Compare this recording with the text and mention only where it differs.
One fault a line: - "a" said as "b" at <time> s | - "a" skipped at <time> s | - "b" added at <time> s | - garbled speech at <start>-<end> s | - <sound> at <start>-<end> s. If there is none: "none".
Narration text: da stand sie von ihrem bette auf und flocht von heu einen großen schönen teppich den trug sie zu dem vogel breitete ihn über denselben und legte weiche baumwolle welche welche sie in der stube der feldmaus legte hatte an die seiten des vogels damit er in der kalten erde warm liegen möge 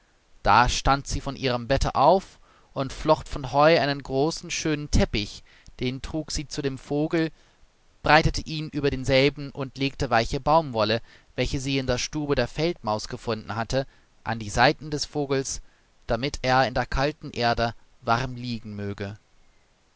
- "welche" skipped at 11.6 s
- "legte" said as "gefunden" at 13.1 s